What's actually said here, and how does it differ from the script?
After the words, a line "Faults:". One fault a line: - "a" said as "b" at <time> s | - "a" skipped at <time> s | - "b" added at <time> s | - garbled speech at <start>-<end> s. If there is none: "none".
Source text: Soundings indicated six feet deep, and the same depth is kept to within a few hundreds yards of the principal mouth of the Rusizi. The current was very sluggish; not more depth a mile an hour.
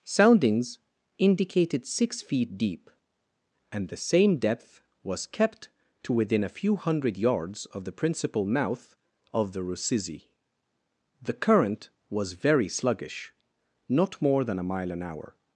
Soundings indicated six feet deep, and the same depth was kept to within a few hundred yards of the principal mouth of the Rusizi. The current was very sluggish; not more than a mile an hour.
Faults:
- "is" said as "was" at 5.0 s
- "hundreds" said as "hundred" at 6.8 s
- "depth" said as "than" at 14.4 s